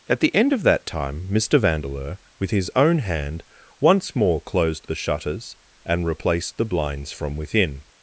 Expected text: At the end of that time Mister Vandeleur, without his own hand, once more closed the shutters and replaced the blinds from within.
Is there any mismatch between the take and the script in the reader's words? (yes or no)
yes